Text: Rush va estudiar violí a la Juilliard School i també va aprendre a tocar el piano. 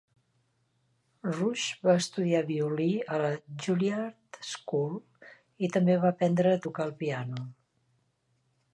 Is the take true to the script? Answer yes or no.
yes